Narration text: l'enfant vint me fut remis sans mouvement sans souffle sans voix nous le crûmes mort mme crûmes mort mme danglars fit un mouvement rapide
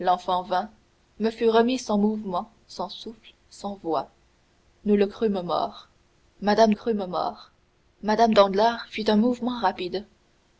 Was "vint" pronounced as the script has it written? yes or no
yes